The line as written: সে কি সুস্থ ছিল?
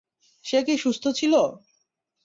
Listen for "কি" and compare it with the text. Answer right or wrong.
right